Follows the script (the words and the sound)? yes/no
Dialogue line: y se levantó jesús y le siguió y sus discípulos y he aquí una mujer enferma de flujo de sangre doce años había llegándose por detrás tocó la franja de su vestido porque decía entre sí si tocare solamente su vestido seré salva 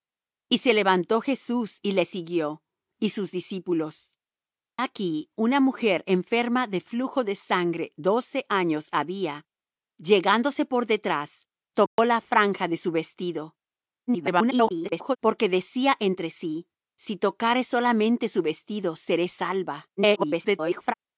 no